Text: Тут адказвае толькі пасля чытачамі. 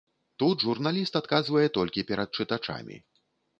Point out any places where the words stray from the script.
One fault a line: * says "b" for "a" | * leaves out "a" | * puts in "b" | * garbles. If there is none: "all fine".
* puts in "журналіст"
* says "перад" for "пасля"